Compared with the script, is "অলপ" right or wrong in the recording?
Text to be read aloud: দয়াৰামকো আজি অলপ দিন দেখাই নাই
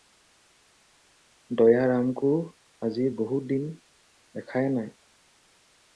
wrong